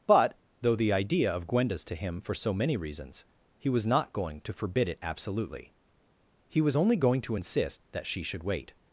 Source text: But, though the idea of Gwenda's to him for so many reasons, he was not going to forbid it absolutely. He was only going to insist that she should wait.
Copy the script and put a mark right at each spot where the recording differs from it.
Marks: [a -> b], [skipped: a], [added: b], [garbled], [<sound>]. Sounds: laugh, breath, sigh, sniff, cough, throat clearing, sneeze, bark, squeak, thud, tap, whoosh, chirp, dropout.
But, though the idea of Gwenda's to him for so many reasons, he was not going to forbid it absolutely. He was only going to insist that she should wait.